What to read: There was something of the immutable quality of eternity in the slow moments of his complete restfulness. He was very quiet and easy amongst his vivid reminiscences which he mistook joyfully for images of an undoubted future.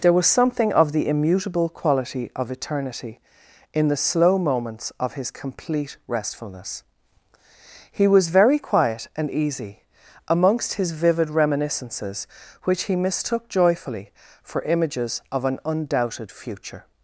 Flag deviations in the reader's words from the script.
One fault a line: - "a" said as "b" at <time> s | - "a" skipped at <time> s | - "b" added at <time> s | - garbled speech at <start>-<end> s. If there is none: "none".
none